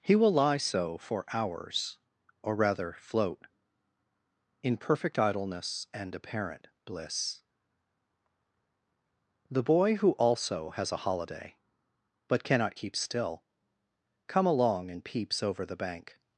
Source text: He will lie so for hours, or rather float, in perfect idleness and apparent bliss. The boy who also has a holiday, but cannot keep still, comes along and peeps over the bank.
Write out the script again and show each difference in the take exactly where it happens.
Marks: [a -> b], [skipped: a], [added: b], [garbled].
He will lie so for hours, or rather float, in perfect idleness and apparent bliss. The boy who also has a holiday, but cannot keep still, [comes -> come] along and peeps over the bank.